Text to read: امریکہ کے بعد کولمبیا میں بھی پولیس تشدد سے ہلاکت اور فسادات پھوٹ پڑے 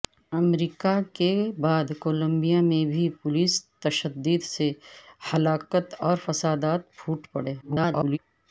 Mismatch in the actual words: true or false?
true